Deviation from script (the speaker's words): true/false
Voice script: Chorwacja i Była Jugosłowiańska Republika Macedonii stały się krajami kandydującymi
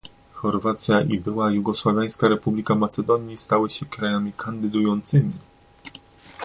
false